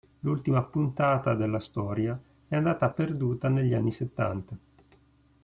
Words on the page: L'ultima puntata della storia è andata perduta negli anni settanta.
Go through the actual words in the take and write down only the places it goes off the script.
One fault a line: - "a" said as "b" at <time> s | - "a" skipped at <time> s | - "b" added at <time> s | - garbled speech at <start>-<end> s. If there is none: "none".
none